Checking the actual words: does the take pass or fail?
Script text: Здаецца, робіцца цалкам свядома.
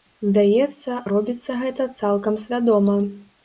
fail